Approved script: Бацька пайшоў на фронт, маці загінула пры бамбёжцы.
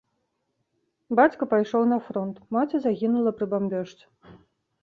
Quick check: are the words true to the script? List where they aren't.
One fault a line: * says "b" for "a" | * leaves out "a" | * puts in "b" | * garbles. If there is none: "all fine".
all fine